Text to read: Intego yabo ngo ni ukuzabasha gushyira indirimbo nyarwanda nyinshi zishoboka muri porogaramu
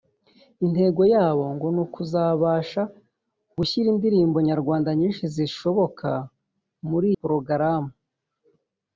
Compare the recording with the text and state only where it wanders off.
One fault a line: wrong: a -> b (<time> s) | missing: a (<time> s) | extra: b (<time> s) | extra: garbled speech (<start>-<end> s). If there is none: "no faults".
no faults